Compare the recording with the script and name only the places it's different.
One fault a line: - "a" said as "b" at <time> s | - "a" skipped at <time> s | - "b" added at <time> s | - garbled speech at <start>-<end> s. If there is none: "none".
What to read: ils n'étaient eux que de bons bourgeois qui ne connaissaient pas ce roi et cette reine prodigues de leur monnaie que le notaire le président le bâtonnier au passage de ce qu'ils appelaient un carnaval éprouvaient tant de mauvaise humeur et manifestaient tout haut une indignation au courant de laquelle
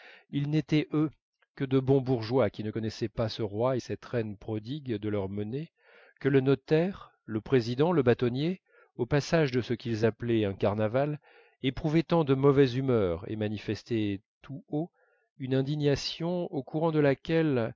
none